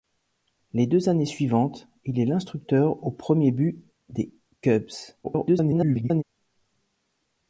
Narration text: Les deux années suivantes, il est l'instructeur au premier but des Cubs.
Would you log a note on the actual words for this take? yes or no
yes